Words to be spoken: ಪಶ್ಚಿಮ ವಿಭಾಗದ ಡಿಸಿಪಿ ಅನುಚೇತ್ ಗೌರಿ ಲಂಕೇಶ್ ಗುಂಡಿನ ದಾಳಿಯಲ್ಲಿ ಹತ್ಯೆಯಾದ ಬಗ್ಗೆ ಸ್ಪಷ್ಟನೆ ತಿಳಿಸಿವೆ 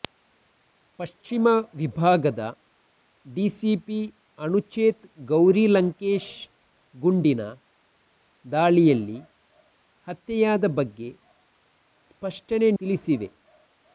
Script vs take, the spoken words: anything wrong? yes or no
no